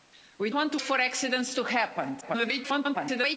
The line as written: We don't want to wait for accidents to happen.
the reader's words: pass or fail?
fail